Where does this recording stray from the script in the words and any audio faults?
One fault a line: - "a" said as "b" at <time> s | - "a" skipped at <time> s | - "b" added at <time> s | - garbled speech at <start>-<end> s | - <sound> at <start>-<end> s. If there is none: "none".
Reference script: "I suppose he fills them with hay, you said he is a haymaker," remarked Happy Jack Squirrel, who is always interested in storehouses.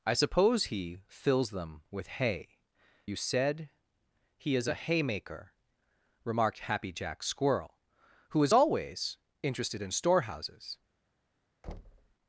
- thud at 11.6-12.1 s